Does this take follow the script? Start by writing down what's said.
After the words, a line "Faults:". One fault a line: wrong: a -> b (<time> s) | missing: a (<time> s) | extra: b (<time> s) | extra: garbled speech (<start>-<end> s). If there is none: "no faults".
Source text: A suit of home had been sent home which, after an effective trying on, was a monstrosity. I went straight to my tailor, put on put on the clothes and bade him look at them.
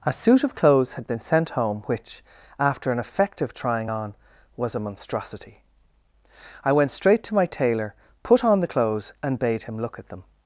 A suit of clothes had been sent home which, after an effective trying on, was a monstrosity. I went straight to my tailor, put on the clothes and bade him look at them.
Faults:
wrong: home -> clothes (0.6 s)
missing: put on (8.6 s)